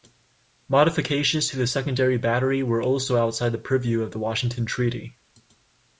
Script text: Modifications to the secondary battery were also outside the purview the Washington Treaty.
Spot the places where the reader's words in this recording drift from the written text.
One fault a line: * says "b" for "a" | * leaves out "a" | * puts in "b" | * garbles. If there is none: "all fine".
* puts in "of"